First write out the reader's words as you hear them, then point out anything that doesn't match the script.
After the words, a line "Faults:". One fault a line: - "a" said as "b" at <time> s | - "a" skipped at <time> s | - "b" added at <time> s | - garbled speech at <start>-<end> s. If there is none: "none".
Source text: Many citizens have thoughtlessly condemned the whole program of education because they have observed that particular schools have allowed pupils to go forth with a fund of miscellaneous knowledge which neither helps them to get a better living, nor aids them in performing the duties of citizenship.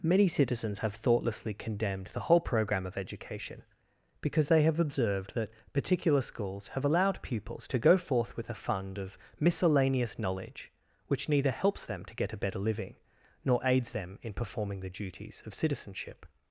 Many citizens have thoughtlessly condemned the whole program of education because they have observed that particular schools have allowed pupils to go forth with a fund of miscellaneous knowledge which neither helps them to get a better living, nor aids them in performing the duties of citizenship.
Faults:
none